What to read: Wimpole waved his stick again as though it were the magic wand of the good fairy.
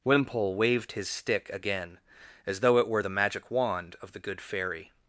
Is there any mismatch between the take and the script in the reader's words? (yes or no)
no